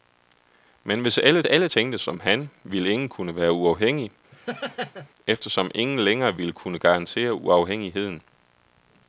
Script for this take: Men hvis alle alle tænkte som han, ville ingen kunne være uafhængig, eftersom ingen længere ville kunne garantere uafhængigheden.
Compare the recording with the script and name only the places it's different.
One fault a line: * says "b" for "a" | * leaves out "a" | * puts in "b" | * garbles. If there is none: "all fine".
all fine